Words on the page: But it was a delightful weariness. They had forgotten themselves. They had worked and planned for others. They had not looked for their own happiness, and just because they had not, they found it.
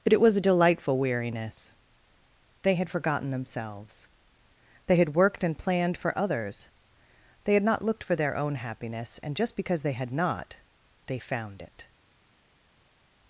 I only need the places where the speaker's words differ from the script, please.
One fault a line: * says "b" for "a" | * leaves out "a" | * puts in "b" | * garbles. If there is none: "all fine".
all fine